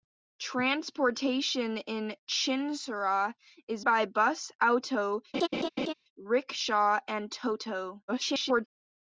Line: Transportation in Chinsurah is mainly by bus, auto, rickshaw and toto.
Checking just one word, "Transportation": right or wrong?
right